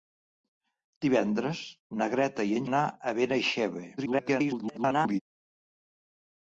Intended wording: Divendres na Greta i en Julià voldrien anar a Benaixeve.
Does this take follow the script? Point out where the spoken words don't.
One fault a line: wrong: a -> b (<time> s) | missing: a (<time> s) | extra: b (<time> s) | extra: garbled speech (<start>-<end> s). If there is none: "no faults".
missing: Julià voldrien (2.7 s)
extra: garbled speech (4.0-5.2 s)